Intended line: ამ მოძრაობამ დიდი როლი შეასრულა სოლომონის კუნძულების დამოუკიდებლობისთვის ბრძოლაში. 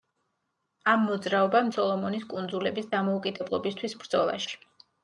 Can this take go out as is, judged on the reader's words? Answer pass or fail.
fail